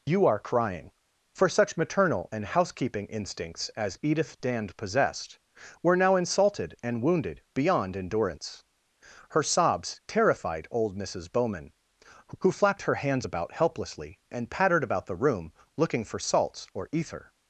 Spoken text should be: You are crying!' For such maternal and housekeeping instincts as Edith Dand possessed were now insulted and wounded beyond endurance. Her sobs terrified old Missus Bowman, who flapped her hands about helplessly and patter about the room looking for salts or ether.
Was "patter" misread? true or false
true